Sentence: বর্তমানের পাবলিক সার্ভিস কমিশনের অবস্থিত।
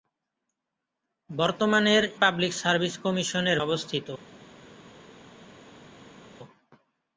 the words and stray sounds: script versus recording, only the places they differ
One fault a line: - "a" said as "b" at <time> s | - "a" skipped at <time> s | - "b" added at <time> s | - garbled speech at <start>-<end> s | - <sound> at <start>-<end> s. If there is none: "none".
none